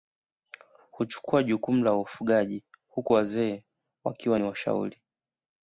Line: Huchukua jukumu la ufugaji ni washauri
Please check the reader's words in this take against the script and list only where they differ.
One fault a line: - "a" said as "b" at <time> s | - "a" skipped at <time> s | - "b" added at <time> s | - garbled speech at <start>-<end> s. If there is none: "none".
- "huku wazee wakiwa" added at 2.9 s